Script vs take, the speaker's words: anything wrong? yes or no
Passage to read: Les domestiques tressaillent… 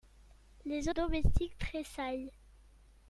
no